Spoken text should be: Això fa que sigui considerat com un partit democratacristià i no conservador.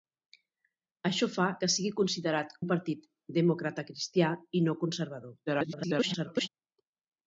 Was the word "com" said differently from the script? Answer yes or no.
yes